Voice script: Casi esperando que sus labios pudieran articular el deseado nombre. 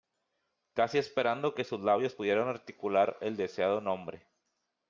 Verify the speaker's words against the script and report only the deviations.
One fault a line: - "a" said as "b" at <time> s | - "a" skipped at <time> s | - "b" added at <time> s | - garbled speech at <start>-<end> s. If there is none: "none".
none